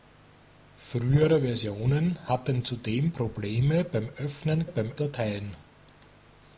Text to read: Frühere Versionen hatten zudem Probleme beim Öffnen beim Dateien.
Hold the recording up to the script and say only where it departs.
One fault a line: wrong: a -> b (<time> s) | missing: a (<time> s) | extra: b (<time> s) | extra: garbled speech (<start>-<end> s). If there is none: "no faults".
no faults